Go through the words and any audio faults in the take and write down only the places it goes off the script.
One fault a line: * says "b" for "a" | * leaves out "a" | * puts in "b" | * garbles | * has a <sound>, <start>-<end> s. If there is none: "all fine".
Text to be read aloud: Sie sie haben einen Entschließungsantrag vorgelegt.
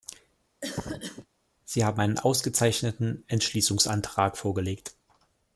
* has a cough, 0.6-1.3 s
* leaves out "sie"
* puts in "ausgezeichneten"